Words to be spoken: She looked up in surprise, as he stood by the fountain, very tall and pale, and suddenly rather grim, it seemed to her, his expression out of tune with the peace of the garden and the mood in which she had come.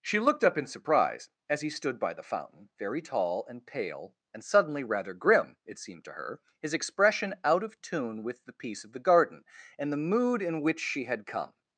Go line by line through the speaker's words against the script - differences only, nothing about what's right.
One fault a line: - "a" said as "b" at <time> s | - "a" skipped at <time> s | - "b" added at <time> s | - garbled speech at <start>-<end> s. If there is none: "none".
none